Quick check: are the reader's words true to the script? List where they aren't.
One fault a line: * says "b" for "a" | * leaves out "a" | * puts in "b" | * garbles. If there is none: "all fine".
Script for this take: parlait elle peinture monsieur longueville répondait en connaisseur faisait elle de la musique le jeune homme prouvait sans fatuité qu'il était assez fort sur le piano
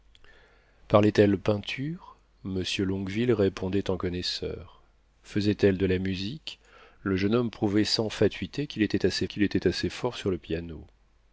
* puts in "qu'il était assez"